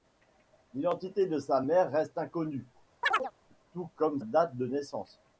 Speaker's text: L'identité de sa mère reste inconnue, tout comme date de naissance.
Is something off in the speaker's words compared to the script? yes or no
no